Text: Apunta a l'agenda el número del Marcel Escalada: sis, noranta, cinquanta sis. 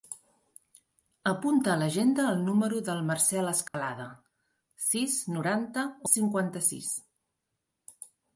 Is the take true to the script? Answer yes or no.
yes